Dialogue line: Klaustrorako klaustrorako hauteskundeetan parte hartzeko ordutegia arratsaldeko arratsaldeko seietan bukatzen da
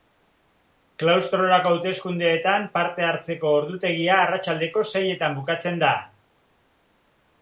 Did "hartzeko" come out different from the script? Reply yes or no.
no